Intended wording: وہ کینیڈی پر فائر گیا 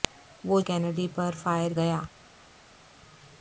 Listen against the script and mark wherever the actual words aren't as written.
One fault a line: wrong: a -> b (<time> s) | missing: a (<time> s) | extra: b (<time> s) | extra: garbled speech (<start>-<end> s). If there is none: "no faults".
no faults